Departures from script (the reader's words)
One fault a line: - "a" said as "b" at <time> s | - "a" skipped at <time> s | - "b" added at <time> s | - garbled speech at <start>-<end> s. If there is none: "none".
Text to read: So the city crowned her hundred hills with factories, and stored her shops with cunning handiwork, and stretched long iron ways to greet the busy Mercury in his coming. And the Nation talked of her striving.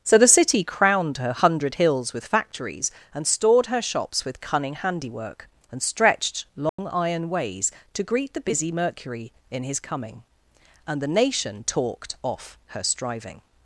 - "of" said as "off" at 12.2 s